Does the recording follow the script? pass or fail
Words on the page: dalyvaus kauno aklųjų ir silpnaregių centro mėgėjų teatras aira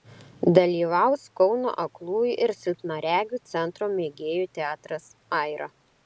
pass